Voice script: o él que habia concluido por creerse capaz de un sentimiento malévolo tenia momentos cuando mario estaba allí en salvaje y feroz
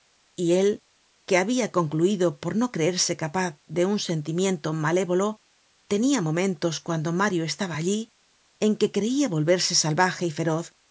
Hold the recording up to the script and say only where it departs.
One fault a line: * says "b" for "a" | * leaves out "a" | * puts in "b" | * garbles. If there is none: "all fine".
* says "y" for "o"
* puts in "no"
* puts in "que creia volverse"